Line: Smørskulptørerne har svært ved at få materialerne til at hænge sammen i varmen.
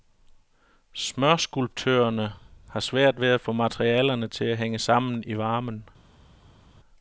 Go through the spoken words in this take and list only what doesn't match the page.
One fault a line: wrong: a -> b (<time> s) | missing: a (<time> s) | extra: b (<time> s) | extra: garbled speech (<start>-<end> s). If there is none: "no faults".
no faults